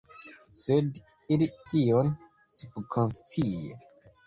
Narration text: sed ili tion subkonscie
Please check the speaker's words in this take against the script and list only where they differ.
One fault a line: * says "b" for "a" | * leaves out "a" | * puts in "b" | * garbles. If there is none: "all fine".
all fine